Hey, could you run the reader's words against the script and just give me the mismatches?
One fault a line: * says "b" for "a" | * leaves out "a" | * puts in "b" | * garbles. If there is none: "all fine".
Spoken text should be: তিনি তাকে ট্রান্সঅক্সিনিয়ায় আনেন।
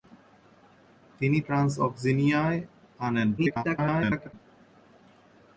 * leaves out "তাকে"
* garbles